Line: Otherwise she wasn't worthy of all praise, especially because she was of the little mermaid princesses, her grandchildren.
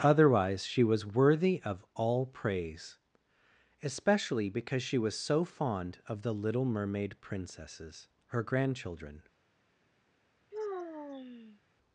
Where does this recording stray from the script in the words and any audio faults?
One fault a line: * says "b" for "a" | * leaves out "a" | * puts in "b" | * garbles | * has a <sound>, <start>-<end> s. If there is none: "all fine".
* says "was" for "wasn't"
* puts in "so fond"
* has a sigh, 10.5-11.6 s